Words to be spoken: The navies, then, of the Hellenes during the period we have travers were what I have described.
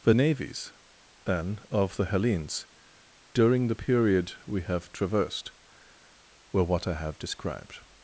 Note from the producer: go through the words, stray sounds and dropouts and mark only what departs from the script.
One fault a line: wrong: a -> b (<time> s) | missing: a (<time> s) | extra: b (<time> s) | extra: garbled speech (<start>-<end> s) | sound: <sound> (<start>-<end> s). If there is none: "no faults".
wrong: travers -> traversed (4.9 s)